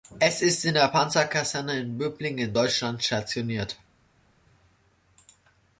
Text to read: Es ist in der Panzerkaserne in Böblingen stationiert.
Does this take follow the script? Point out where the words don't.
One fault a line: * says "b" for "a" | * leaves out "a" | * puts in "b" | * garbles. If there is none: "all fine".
* puts in "in Deutschland"